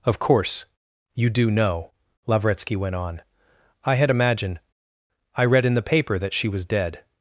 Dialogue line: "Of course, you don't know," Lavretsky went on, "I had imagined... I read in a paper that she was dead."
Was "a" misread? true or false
true